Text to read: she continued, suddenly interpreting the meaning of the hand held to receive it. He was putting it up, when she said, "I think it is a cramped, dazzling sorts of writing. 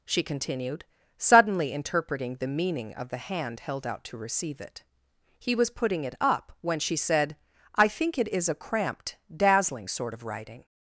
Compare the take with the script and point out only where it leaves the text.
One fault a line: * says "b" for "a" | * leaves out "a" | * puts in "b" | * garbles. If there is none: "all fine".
* puts in "out"
* says "sort" for "sorts"